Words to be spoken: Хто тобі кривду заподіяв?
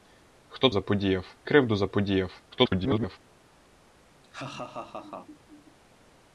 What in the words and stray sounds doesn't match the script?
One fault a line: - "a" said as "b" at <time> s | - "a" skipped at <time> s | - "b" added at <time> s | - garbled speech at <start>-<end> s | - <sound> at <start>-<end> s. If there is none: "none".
- "тобі" said as "заподіяв" at 0.7 s
- garbled speech at 2.5-3.2 s
- laugh at 4.2-5.8 s